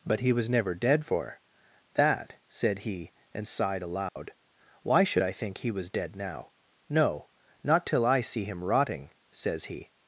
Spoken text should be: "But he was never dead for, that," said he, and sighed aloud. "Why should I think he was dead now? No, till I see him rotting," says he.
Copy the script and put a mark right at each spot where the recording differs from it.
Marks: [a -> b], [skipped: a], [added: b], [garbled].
"But he was never dead for, that," said he, and sighed aloud. "Why should I think he was dead now? No, [added: not] till I see him rotting," says he.